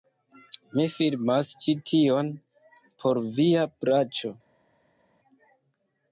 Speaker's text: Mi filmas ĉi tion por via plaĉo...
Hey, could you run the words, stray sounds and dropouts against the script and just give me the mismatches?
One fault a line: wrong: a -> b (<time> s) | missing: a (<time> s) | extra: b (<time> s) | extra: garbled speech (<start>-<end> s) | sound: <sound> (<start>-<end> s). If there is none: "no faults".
no faults